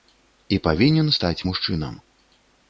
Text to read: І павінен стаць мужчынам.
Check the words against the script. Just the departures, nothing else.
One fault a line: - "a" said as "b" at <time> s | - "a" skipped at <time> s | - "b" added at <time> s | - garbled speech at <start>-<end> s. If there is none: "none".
none